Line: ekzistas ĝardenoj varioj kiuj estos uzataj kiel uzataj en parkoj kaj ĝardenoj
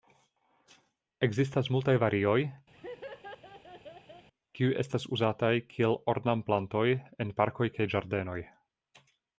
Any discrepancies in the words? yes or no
yes